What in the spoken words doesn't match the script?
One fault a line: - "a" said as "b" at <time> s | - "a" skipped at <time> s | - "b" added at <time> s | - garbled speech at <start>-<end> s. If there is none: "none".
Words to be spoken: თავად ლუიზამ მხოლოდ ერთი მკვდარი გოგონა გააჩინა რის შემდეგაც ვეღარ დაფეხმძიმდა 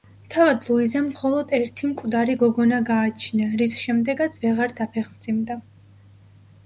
none